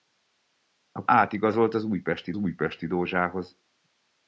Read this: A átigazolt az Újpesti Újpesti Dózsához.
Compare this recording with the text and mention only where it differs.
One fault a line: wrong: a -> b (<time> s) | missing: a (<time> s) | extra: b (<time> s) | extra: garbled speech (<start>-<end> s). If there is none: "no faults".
no faults